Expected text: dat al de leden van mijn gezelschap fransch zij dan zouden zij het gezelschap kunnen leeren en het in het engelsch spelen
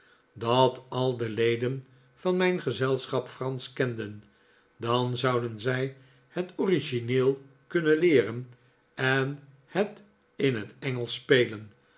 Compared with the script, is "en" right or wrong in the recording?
right